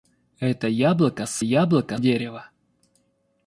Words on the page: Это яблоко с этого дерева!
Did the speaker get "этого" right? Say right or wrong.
wrong